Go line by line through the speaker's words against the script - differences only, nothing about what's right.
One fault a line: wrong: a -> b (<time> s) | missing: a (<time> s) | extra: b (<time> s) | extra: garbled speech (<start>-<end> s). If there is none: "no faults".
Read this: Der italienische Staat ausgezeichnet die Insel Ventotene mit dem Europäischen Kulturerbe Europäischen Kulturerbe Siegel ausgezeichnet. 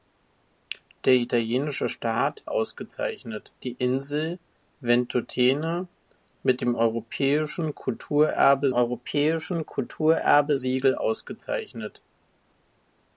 no faults